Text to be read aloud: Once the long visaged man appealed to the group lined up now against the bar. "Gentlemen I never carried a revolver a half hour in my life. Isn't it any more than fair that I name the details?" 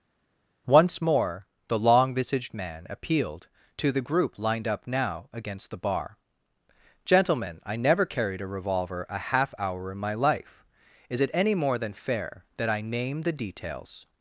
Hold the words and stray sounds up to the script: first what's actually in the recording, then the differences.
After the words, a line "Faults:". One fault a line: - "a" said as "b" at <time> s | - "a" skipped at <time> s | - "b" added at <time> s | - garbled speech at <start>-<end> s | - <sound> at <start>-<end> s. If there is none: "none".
Once more the long visaged man appealed to the group lined up now against the bar. "Gentlemen I never carried a revolver a half hour in my life. Is it any more than fair that I name the details?"
Faults:
- "more" added at 1.0 s
- "Isn't" said as "Is" at 11.1 s